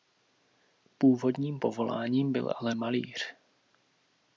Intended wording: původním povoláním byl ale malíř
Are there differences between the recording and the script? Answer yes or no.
no